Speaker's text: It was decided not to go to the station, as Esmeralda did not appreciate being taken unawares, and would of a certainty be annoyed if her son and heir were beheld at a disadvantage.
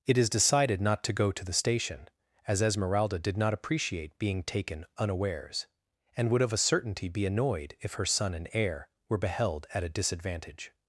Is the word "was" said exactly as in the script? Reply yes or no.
no